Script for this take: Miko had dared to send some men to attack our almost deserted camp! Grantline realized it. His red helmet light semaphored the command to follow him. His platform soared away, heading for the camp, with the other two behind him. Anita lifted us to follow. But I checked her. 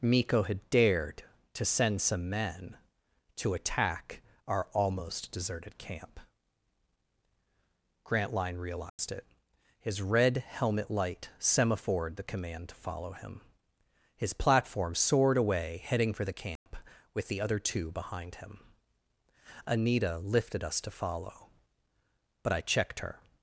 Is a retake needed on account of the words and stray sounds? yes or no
yes